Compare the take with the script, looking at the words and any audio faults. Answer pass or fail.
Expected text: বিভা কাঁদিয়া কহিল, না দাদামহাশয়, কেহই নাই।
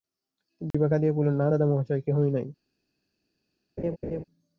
fail